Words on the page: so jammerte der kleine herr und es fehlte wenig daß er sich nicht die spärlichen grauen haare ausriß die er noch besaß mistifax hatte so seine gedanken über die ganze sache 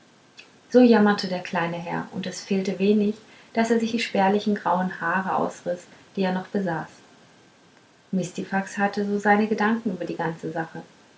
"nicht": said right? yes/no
no